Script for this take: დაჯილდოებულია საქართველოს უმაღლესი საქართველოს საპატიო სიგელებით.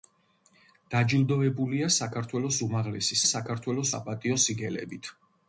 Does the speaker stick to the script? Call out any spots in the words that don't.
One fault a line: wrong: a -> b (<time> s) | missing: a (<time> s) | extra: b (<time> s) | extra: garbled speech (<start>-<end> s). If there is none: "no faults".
no faults